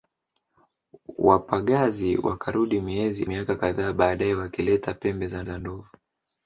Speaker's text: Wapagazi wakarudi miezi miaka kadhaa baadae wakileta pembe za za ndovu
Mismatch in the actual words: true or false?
false